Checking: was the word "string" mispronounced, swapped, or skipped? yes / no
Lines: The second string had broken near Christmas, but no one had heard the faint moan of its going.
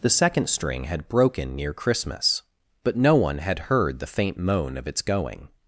no